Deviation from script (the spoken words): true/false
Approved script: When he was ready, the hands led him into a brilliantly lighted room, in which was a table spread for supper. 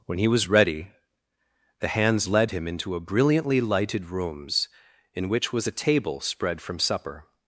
true